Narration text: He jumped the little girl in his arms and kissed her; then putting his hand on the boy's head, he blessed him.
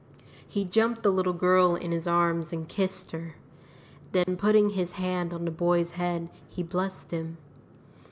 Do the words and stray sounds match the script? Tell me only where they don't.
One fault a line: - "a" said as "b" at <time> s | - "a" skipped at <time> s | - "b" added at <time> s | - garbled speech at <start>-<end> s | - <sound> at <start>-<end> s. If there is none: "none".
- dropout at 4.2-4.3 s